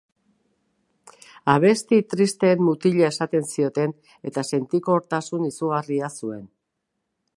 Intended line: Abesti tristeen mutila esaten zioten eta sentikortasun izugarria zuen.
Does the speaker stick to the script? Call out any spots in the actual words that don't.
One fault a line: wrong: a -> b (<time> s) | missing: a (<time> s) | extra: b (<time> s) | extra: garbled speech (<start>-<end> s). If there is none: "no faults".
no faults